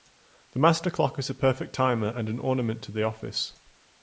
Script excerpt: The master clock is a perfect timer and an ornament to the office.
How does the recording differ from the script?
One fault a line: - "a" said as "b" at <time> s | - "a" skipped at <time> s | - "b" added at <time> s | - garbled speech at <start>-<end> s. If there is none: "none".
none